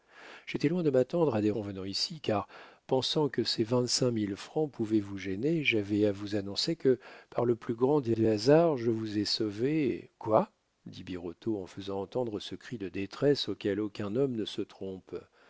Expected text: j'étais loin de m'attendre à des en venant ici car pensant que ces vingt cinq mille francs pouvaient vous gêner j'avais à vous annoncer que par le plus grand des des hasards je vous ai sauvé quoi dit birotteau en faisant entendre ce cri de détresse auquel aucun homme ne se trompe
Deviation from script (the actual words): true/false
false